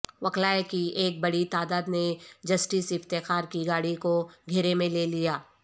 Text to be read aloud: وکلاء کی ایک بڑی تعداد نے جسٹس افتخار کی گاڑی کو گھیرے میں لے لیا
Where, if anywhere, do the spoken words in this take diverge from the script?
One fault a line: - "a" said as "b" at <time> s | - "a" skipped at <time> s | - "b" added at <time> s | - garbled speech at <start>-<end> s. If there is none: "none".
none